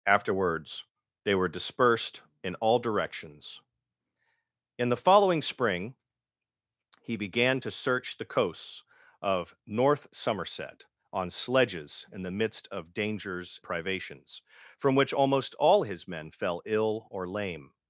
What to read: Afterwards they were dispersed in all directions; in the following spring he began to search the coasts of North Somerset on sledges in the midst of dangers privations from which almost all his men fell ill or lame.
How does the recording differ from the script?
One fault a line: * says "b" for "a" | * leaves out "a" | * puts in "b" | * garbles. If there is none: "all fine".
all fine